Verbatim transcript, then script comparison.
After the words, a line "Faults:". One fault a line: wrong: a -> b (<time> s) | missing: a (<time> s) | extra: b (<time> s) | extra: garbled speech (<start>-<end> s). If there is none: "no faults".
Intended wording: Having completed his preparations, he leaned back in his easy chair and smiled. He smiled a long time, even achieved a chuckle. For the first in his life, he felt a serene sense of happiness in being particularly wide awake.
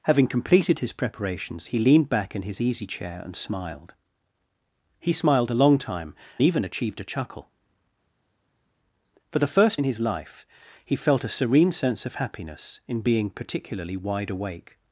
Having completed his preparations, he leaned back in his easy chair and smiled. He smiled a long time, even achieved a chuckle. For the first in his life, he felt a serene sense of happiness in being particularly wide awake.
Faults:
no faults